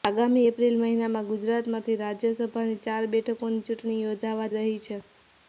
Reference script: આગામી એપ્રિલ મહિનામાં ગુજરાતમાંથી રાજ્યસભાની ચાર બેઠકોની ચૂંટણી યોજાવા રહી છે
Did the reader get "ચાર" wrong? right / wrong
right